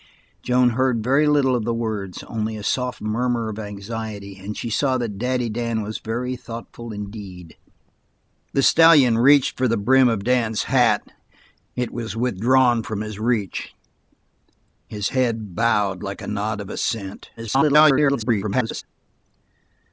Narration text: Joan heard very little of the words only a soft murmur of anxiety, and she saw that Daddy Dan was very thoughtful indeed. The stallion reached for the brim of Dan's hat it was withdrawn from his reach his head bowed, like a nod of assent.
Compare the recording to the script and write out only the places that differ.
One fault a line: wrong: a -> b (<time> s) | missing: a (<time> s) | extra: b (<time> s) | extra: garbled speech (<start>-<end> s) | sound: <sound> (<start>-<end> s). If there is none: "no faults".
extra: garbled speech (17.4-18.8 s)